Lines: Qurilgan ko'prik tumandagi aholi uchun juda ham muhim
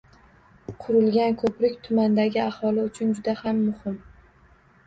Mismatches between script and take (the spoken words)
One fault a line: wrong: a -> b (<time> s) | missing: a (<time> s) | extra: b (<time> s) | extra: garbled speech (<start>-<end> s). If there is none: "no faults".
no faults